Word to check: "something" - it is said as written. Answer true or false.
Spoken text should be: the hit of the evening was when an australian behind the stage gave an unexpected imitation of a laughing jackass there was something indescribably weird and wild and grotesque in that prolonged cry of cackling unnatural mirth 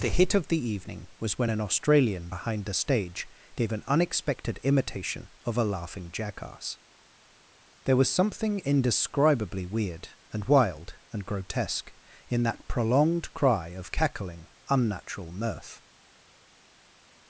true